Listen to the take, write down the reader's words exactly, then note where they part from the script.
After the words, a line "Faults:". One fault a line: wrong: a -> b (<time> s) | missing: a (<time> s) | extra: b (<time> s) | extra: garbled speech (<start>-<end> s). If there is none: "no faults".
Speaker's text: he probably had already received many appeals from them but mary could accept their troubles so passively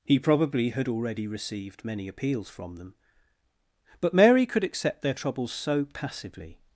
he probably had already received many appeals from them but mary could accept their troubles so passively
Faults:
no faults